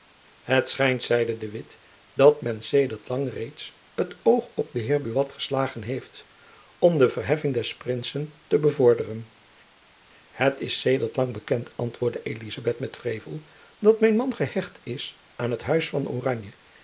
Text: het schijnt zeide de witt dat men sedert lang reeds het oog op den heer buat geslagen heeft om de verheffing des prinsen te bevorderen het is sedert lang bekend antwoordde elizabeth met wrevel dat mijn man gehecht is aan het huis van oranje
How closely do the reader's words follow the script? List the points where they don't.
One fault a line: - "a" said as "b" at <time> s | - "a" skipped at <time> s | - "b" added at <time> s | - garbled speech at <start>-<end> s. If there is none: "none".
none